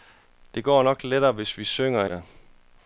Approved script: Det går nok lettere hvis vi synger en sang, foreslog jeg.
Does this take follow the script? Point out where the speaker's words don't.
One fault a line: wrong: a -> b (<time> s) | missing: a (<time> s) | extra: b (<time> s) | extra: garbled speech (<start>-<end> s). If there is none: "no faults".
missing: en sang foreslog (2.0 s)